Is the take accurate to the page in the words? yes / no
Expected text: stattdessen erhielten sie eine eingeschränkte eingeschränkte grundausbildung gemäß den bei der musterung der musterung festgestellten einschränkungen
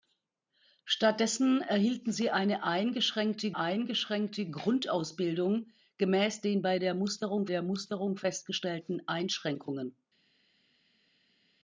yes